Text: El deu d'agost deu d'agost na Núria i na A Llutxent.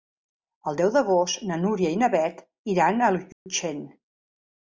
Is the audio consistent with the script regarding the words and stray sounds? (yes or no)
no